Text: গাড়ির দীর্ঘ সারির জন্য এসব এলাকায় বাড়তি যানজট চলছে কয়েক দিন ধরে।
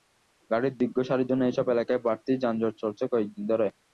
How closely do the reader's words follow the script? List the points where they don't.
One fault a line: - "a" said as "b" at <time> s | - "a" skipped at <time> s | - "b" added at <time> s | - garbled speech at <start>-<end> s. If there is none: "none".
none